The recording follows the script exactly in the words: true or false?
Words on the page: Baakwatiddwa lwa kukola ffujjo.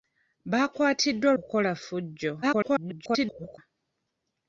false